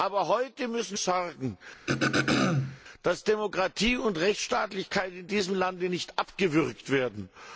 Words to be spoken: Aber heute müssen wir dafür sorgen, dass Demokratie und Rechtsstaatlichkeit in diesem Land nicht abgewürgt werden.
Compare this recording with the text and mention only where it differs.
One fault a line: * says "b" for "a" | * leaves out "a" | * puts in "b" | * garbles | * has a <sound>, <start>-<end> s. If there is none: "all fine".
* leaves out "wir dafür"
* has a throat clearing, 1.9-2.8 s